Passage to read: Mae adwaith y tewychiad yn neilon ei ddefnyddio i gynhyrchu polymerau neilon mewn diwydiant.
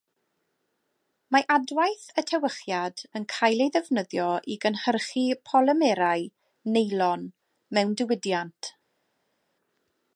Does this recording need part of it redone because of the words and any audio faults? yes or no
yes